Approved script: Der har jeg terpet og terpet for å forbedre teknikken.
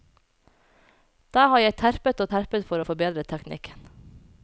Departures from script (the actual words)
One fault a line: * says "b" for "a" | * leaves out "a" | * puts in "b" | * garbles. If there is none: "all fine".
all fine